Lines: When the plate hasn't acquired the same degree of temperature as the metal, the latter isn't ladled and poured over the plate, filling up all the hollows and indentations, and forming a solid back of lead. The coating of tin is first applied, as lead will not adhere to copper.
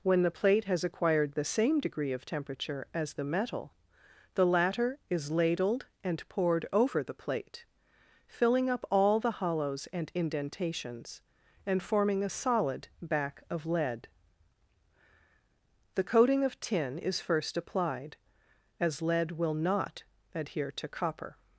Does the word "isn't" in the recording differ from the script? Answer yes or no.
yes